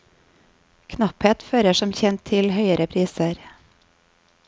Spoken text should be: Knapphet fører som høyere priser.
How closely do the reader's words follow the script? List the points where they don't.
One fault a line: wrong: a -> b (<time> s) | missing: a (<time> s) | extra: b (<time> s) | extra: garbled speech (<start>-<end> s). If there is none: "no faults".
extra: kjent til (2.0 s)